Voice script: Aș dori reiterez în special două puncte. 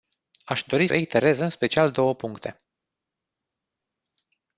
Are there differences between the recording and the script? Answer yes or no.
no